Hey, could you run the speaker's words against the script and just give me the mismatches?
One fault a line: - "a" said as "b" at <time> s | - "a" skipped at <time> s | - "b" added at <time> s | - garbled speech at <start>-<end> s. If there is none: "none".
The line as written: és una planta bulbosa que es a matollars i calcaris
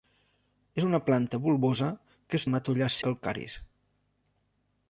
none